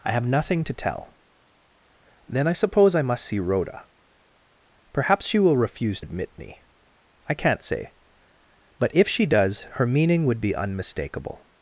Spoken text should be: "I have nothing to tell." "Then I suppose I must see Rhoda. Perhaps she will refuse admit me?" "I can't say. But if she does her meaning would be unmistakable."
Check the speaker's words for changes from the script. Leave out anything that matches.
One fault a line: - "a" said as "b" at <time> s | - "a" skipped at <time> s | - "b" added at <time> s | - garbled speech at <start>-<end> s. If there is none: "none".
none